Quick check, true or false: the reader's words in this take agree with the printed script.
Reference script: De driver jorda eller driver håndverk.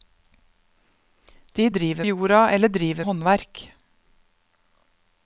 true